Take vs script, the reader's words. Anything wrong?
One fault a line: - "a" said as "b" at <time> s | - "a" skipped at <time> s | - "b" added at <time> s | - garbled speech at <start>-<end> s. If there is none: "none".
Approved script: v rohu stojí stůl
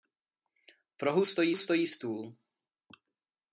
- "stojí" added at 1.5 s